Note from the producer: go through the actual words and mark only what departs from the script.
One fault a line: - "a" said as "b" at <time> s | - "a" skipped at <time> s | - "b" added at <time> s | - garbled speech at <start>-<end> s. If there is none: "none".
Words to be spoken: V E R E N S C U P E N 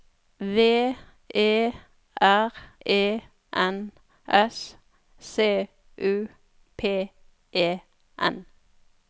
none